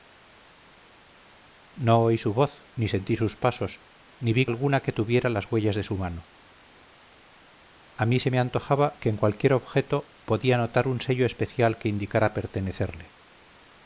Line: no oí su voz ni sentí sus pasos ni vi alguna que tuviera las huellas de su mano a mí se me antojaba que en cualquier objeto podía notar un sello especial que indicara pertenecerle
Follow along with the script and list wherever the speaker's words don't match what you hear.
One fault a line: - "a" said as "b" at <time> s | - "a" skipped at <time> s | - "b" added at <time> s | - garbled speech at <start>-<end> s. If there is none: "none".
none